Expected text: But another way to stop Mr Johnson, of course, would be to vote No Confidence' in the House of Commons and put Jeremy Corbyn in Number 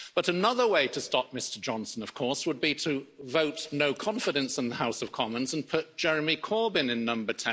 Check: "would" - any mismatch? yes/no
no